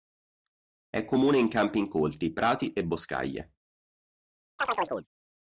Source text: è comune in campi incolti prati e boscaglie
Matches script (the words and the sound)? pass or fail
fail